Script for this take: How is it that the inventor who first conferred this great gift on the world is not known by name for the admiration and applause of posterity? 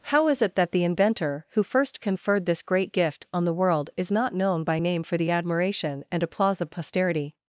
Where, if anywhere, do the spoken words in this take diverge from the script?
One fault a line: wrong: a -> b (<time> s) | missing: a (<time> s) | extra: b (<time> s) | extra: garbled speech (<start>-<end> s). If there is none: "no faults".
no faults